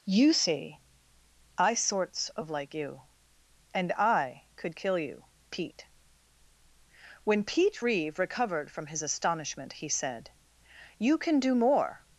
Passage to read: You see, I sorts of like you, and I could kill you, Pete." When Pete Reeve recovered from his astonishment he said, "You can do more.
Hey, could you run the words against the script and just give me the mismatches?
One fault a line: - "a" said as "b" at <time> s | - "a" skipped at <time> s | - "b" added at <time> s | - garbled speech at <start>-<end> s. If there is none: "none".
none